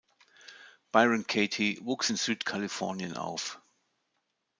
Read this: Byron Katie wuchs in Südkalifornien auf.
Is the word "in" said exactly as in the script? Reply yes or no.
yes